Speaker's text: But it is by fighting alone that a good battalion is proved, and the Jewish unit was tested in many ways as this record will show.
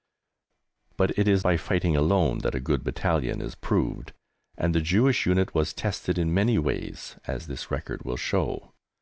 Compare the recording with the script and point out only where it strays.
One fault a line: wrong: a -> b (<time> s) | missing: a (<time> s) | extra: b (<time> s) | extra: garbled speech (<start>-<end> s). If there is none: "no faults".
no faults